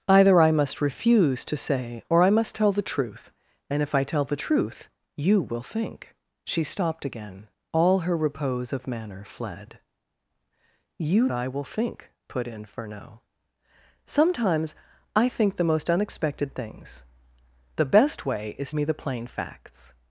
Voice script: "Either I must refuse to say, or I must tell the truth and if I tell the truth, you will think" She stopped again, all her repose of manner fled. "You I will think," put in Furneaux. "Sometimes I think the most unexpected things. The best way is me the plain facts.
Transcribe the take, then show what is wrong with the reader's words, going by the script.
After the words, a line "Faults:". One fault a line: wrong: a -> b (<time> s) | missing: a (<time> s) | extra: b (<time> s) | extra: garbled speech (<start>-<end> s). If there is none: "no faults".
"Either I must refuse to say, or I must tell the truth and if I tell the truth, you will think" She stopped again, all her repose of manner fled. "You I will think," put in Furneaux. "Sometimes I think the most unexpected things. The best way is me the plain facts.
Faults:
no faults